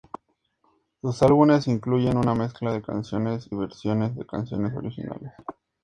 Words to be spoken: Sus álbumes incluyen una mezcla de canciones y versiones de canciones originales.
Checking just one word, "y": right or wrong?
wrong